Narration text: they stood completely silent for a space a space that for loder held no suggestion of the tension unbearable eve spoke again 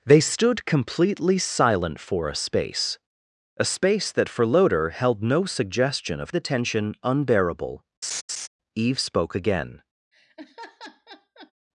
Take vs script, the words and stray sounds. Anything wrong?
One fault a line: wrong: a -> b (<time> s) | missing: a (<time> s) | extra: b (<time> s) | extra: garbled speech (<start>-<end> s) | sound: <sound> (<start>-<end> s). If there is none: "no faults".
sound: laugh (8.0-8.5 s)
sound: laugh (10.1-11.5 s)